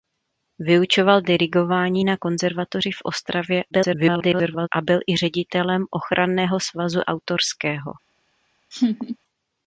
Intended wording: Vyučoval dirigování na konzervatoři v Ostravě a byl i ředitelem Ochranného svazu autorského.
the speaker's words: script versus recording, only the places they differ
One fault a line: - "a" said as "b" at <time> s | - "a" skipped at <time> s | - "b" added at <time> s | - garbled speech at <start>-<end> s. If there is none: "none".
- garbled speech at 3.7-4.7 s